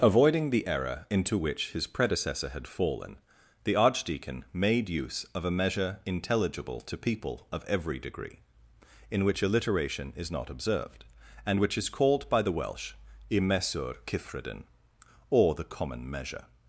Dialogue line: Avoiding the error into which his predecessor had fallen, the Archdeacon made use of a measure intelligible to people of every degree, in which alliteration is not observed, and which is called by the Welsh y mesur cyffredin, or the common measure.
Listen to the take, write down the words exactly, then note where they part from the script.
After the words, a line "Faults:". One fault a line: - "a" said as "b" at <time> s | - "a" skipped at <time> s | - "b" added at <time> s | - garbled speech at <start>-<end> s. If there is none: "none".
Avoiding the error into which his predecessor had fallen, the Archdeacon made use of a measure intelligible to people of every degree, in which alliteration is not observed, and which is called by the Welsh y mesur cyffredin, or the common measure.
Faults:
none